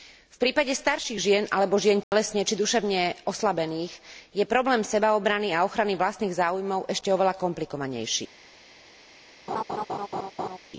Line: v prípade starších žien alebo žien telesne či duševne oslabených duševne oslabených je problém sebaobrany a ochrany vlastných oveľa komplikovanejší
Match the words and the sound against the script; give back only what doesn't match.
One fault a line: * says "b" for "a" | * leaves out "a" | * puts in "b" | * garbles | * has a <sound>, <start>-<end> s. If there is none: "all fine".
* has a dropout, 2.0-2.1 s
* leaves out "duševne oslabených"
* puts in "záujmov ešte"
* has a laugh, 9.5-10.6 s